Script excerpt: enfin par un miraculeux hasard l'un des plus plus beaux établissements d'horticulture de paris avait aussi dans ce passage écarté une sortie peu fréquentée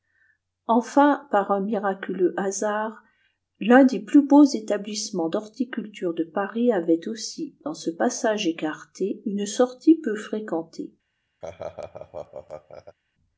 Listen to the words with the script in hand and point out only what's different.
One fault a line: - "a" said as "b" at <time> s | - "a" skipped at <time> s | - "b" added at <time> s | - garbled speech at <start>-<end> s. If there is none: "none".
- "plus" skipped at 4.2 s